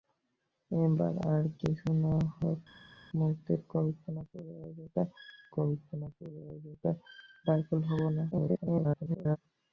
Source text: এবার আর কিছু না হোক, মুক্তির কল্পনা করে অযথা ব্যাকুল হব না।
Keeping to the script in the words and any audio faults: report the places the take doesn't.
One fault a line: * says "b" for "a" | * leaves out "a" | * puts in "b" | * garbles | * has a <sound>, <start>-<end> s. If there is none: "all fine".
* puts in "কল্পনা করে অযথা"
* garbles